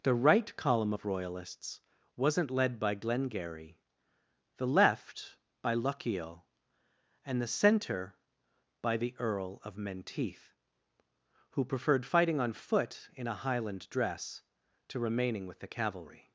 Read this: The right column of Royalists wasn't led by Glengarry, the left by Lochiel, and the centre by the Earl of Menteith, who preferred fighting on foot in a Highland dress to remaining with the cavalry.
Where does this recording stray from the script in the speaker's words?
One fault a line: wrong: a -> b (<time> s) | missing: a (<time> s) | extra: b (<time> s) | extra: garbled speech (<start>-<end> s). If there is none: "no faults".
no faults